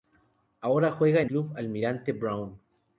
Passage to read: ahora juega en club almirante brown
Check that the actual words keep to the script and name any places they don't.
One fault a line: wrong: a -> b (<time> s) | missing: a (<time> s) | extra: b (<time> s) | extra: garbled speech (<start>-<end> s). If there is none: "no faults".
no faults